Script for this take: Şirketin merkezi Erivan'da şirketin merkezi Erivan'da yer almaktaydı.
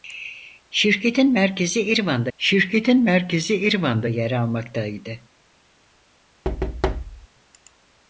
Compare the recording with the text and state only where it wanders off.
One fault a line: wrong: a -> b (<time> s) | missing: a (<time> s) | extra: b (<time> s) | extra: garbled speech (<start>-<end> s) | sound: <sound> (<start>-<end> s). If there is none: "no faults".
sound: thud (6.4-7.3 s)